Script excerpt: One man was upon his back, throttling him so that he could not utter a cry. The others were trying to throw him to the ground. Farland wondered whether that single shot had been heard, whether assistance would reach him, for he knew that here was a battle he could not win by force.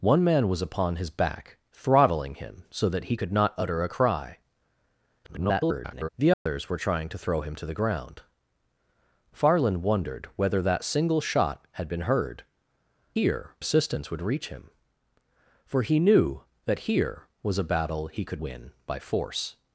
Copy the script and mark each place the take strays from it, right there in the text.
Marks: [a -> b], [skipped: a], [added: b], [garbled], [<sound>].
One man was upon his back, throttling him so that he could not utter a cry. [garbled] The others [dropout] were trying to throw him to the ground. Farland wondered whether that single shot had been heard, [whether -> here] assistance would reach him, for he knew that here was a battle he could [skipped: not] win by force.